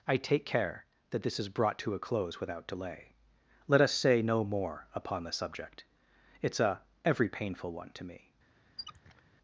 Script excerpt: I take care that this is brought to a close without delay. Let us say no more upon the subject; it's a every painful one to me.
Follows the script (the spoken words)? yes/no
yes